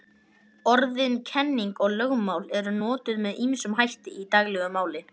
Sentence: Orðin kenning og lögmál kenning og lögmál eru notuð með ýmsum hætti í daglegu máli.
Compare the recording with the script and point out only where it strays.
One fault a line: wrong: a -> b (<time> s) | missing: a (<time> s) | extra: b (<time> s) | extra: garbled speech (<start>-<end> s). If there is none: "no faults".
missing: kenning og lögmál (2.5 s)